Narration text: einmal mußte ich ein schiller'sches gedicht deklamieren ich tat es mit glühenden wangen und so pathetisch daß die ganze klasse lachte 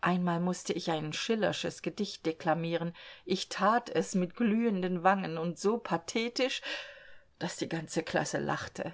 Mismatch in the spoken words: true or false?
false